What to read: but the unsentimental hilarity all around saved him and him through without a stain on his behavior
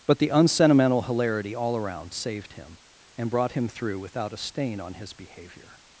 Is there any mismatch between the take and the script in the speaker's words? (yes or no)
yes